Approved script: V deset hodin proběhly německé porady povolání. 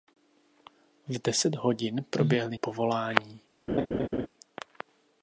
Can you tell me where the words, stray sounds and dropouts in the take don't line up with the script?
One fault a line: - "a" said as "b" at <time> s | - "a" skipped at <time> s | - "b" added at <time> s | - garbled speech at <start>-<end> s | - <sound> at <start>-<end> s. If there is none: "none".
- "německé porady" skipped at 2.6 s
- laugh at 3.7-4.3 s